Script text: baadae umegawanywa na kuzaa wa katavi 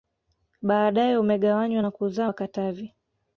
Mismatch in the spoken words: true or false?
false